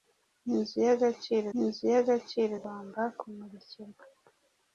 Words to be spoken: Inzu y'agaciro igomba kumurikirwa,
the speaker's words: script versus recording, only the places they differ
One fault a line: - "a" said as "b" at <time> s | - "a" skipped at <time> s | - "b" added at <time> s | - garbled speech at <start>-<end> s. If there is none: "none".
- "inzu y'agaciro" added at 1.6 s